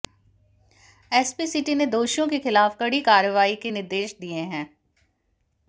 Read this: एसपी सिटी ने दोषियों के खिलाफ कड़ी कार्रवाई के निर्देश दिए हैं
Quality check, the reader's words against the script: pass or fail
pass